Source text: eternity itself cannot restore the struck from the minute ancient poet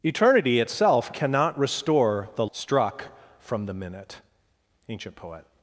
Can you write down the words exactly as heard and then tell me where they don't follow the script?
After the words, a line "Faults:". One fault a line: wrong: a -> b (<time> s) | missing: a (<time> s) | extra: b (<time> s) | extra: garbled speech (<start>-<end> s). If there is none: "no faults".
eternity itself cannot restore the struck from the minute ancient poet
Faults:
no faults